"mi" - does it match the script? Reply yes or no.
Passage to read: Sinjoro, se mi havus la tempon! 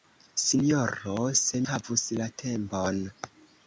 no